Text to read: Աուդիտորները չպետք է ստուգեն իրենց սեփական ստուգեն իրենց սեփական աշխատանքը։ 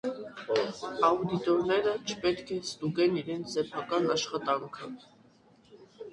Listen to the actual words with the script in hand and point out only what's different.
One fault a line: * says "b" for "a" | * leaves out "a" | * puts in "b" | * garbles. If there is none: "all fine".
* leaves out "ստուգեն իրենց սեփական"